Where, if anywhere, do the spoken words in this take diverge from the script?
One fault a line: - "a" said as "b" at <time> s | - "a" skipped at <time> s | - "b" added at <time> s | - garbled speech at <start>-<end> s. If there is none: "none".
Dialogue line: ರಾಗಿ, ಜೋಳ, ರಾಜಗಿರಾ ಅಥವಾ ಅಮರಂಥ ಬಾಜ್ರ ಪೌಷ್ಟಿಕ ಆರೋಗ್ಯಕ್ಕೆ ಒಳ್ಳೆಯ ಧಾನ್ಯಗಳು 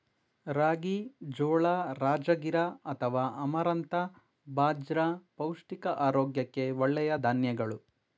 none